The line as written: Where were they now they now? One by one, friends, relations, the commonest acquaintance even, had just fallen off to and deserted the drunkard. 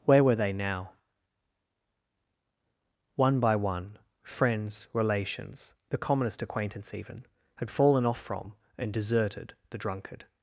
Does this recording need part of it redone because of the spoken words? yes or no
yes